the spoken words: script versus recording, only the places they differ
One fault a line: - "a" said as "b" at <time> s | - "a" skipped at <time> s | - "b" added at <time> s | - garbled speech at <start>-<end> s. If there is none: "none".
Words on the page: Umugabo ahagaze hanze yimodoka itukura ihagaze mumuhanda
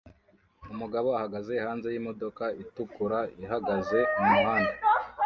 none